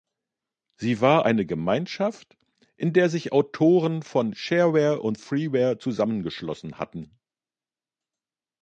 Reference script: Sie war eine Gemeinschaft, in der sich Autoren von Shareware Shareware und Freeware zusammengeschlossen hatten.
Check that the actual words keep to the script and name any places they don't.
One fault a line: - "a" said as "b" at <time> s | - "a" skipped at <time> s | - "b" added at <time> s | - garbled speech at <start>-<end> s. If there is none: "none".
- "Shareware" skipped at 5.0 s